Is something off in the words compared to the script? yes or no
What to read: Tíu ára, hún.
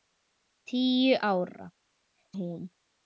no